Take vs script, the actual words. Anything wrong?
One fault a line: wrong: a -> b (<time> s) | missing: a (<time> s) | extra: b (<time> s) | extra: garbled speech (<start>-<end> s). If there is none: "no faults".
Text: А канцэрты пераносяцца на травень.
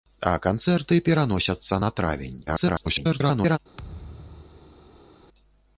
extra: garbled speech (2.5-3.6 s)